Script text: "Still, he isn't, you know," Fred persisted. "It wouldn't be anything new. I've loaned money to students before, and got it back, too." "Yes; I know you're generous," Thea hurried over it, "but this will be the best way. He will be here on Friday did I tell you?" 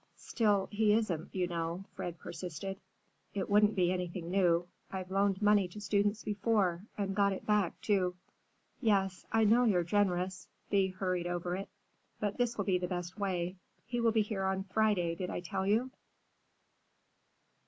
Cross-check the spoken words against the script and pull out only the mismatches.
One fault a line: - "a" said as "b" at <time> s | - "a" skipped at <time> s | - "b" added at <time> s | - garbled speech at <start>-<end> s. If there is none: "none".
none